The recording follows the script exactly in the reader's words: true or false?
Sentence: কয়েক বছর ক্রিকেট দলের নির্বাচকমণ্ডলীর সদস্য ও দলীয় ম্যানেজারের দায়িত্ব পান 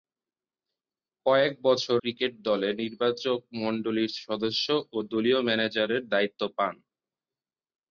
true